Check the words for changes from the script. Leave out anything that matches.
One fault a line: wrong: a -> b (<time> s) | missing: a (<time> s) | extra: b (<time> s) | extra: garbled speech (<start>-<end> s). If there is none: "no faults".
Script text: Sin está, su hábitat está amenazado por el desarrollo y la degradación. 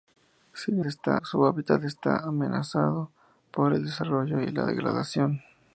no faults